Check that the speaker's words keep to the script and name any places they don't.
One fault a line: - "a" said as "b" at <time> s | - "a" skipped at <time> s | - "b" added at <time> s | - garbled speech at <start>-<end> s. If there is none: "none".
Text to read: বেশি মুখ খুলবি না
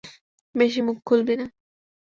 none